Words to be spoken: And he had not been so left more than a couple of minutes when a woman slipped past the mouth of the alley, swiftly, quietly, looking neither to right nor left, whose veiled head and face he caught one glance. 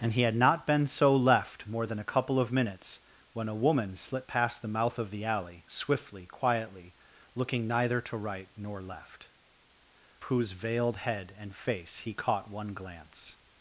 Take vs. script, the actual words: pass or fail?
pass